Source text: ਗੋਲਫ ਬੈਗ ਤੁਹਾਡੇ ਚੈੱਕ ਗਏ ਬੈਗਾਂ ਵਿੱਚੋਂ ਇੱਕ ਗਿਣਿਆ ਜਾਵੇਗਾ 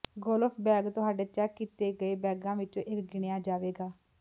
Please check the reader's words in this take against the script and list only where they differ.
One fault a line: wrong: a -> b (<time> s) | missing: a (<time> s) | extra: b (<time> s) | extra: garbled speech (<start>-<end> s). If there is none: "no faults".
extra: ਕੀਤੇ (1.6 s)